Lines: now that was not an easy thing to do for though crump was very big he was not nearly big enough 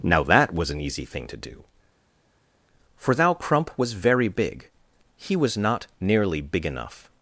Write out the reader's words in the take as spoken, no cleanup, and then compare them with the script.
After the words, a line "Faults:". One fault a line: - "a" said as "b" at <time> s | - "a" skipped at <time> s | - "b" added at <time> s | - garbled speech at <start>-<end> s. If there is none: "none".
now that was an easy thing to do for thou crump was very big he was not nearly big enough
Faults:
- "not" skipped at 0.7 s
- "though" said as "thou" at 3.2 s